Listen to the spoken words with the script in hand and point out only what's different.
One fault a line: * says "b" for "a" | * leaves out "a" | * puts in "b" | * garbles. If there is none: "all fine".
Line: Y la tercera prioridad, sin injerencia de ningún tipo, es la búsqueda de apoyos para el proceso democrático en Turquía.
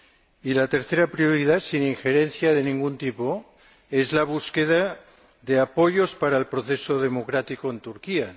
all fine